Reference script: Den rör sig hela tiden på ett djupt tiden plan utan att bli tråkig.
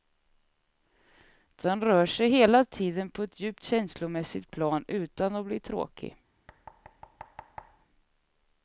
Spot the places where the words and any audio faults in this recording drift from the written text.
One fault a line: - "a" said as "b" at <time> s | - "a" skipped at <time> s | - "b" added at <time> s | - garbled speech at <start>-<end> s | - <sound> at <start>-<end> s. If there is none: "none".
- "tiden" said as "känslomässigt" at 3.6 s
- thud at 6.5-7.9 s